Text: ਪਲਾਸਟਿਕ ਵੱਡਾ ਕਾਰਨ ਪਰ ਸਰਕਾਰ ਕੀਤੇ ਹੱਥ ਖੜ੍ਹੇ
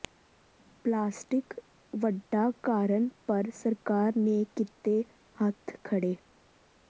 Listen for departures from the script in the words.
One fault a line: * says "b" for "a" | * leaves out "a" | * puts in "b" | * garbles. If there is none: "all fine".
* puts in "ਨੇ"